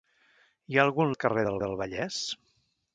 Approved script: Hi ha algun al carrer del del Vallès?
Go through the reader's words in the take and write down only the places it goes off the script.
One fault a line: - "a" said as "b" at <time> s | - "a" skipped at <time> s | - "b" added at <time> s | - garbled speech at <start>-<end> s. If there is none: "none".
none